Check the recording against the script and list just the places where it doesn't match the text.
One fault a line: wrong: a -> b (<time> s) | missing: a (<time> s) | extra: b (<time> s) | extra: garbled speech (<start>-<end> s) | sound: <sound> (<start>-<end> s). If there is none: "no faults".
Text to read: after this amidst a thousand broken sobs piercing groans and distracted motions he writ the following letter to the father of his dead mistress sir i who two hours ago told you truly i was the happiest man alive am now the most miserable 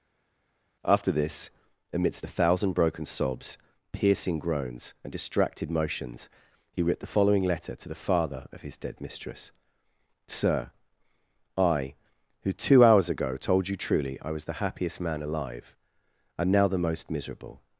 no faults